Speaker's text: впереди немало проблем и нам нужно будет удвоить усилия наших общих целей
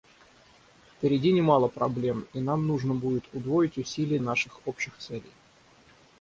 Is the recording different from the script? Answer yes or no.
no